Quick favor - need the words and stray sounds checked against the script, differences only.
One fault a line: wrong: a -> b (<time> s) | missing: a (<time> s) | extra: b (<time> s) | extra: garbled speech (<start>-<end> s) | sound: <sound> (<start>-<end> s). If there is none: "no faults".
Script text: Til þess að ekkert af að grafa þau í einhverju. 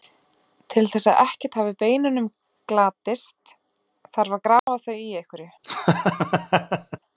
extra: beinunum glatist þarf (1.8 s)
sound: dropout (4.6-4.7 s)
sound: laugh (5.6-7.0 s)